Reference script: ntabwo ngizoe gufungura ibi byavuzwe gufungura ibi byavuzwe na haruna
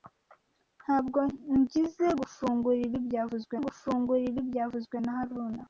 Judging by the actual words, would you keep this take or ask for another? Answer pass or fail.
pass